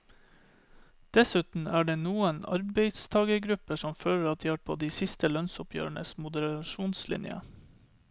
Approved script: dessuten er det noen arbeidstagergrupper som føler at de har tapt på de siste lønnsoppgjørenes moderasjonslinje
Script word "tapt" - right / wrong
wrong